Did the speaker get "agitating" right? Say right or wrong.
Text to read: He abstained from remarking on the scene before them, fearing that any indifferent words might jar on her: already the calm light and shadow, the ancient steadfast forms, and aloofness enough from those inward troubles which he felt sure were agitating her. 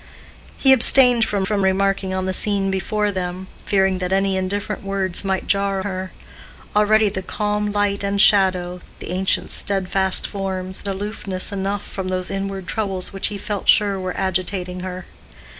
right